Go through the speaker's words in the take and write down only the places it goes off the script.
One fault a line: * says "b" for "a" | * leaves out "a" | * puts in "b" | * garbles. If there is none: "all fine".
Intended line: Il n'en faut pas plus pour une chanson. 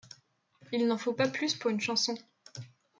all fine